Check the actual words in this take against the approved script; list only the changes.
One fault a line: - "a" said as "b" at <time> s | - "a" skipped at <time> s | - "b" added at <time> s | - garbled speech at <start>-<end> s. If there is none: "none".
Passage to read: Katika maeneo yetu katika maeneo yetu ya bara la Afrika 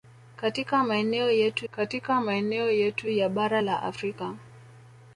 none